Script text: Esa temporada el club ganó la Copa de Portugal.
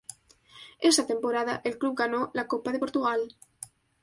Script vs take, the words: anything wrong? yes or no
no